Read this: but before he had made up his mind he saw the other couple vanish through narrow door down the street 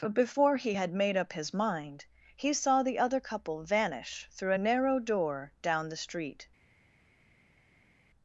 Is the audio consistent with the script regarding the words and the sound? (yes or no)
no